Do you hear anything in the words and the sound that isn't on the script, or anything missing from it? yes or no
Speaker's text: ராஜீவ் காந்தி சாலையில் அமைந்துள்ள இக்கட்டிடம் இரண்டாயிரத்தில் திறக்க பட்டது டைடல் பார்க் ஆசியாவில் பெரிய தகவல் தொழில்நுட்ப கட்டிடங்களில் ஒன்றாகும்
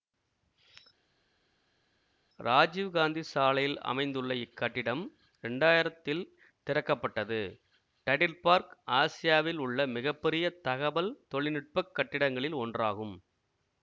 yes